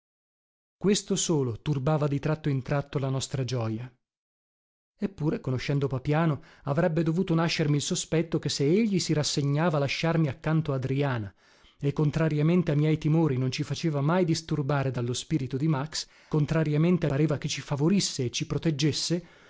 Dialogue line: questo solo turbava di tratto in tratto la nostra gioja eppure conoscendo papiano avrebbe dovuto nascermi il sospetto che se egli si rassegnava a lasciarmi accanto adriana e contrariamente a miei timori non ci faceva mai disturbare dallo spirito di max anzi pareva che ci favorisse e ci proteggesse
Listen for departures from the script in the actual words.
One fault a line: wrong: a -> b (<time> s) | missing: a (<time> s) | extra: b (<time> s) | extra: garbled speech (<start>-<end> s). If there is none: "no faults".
wrong: anzi -> contrariamente (16.3 s)